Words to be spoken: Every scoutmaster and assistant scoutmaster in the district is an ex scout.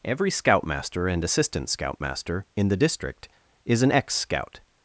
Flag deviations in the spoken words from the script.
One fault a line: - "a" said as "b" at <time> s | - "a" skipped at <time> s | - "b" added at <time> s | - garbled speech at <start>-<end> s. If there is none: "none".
none